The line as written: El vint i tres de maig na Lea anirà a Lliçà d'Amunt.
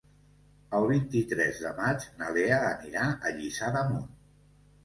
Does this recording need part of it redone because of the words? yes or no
no